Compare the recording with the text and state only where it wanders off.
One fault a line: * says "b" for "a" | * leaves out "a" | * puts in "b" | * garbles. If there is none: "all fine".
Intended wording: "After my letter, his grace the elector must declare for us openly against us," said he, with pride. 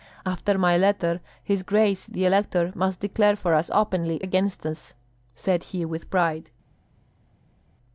all fine